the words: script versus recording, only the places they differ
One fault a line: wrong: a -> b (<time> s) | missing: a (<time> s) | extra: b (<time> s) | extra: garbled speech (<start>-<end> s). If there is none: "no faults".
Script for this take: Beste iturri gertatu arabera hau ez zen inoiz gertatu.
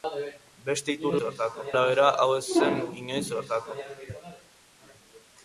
no faults